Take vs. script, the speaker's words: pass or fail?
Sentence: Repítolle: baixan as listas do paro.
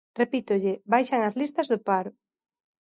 pass